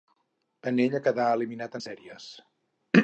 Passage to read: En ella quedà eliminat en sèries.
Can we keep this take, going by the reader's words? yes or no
yes